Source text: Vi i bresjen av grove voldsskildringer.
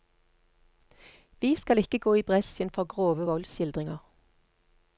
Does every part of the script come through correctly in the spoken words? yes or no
no